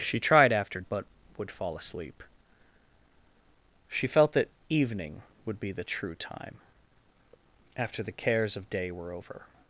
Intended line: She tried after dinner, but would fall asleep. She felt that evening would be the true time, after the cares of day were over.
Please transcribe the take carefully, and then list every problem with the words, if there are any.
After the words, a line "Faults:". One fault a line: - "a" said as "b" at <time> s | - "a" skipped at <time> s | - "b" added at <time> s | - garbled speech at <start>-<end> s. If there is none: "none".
She tried after but would fall asleep. She felt that evening would be the true time, after the cares of day were over.
Faults:
- "dinner" skipped at 0.8 s